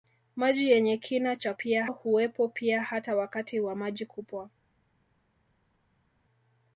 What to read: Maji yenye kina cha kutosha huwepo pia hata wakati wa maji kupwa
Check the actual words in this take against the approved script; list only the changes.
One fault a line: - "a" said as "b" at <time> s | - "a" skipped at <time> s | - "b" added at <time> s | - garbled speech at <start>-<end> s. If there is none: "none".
- "kutosha" said as "pia" at 1.5 s